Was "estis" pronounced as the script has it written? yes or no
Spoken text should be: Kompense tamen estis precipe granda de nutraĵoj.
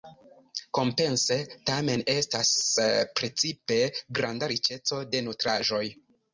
no